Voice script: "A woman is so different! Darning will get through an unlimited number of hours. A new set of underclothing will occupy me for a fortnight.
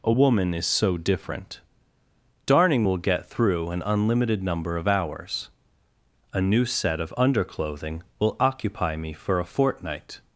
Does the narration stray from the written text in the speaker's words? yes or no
no